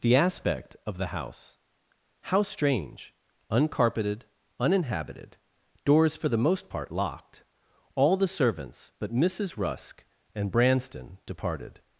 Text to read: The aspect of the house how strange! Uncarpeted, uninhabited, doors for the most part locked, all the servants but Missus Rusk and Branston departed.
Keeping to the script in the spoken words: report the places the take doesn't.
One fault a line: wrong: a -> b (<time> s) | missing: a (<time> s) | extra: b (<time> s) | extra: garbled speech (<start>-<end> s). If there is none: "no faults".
no faults